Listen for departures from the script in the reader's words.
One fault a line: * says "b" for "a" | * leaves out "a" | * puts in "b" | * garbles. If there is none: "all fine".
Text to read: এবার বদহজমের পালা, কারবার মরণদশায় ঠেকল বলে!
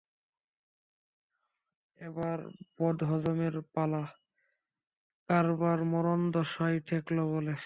all fine